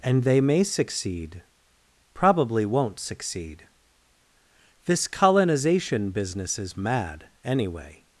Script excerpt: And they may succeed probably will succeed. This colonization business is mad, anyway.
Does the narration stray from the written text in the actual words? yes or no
yes